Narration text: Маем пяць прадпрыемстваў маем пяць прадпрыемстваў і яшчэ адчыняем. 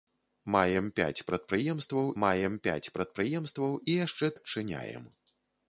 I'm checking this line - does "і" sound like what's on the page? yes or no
yes